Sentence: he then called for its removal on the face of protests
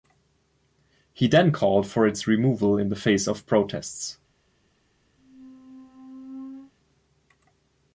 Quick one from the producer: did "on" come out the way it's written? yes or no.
no